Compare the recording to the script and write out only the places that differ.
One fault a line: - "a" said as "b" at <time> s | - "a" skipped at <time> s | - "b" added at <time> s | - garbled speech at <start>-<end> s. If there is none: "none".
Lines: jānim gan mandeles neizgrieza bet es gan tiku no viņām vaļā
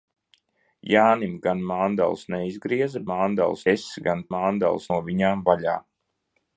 - "bet" said as "mandeles" at 3.1 s
- "tiku" said as "mandeles" at 4.3 s